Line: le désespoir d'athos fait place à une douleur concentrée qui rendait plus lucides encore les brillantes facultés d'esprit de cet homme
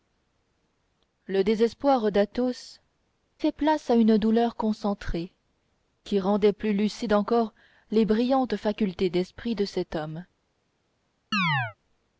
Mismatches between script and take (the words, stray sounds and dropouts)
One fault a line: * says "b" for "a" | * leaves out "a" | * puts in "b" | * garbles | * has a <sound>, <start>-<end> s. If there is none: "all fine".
* has a chirp, 11.3-11.8 s